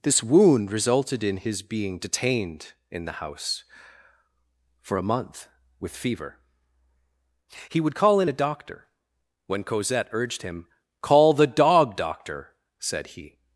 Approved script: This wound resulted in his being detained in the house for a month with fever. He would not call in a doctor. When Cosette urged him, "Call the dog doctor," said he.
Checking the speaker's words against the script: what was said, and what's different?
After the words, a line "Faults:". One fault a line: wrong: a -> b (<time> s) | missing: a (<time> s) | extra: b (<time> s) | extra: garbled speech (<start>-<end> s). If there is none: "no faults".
This wound resulted in his being detained in the house for a month with fever. He would call in a doctor. When Cosette urged him, "Call the dog doctor," said he.
Faults:
missing: not (7.9 s)